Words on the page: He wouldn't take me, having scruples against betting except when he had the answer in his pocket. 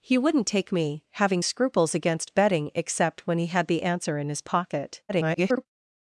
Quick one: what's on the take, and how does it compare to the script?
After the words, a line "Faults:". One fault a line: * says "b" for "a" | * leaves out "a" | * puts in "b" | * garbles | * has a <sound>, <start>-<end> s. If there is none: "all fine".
He wouldn't take me, having scruples against betting except when he had the answer in his pocket. [garbled]
Faults:
* garbles